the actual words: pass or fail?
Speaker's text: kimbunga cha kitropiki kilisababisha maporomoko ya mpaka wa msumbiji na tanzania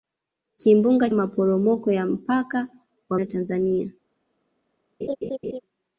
fail